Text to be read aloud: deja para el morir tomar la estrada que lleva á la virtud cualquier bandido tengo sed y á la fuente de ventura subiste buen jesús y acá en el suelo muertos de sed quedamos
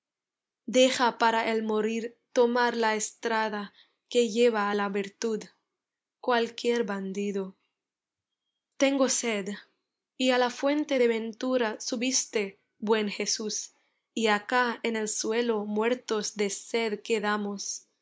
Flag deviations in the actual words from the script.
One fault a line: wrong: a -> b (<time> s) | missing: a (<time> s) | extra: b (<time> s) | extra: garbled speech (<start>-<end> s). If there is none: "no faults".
no faults